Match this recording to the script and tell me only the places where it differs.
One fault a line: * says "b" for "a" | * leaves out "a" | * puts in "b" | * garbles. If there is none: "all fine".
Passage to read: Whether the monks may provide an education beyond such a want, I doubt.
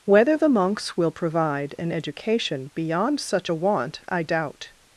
* says "will" for "may"